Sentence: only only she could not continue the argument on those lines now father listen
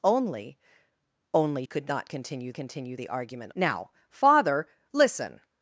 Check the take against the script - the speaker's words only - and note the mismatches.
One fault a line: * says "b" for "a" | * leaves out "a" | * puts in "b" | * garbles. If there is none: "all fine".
* leaves out "she"
* puts in "continue"
* leaves out "on those lines"